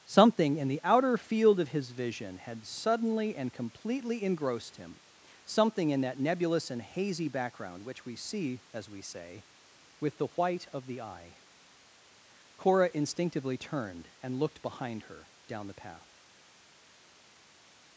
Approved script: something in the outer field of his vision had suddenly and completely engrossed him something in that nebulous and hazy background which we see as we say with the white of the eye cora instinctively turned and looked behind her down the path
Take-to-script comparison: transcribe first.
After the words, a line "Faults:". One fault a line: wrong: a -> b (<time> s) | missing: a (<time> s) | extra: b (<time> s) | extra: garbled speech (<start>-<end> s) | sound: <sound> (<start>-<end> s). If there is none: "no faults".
something in the outer field of his vision had suddenly and completely engrossed him something in that nebulous and hazy background which we see as we say with the white of the eye cora instinctively turned and looked behind her down the path
Faults:
no faults